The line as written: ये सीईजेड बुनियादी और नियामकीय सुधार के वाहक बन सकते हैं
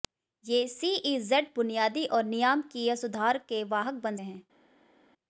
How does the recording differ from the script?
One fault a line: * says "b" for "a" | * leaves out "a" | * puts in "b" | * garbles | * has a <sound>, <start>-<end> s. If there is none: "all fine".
* leaves out "सकते"